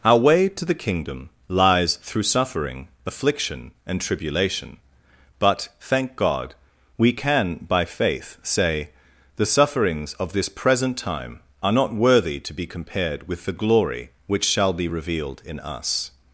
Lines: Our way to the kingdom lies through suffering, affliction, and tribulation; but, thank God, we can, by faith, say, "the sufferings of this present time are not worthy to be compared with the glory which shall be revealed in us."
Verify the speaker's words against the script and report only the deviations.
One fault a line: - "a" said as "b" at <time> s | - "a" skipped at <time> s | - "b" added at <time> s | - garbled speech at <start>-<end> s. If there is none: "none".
none